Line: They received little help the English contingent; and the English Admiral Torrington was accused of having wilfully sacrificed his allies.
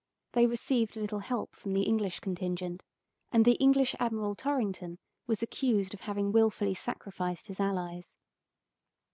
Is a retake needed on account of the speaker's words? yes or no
yes